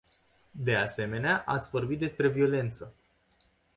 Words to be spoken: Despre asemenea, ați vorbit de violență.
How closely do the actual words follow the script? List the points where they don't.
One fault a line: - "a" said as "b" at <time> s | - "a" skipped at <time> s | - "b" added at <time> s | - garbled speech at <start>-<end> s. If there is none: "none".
- "Despre" said as "De" at 0.5 s
- "de" said as "despre" at 2.0 s